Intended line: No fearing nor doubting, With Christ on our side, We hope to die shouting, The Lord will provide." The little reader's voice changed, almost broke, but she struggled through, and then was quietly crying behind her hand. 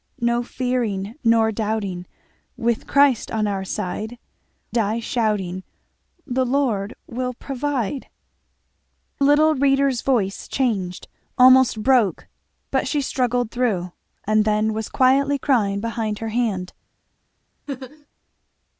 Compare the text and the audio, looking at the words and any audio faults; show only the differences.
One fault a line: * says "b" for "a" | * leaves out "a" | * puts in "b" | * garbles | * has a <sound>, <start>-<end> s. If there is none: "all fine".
* leaves out "We hope to"
* leaves out "The"
* has a laugh, 17.7-18.1 s